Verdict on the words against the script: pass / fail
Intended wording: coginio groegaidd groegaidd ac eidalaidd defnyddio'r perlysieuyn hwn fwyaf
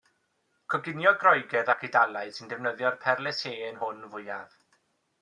fail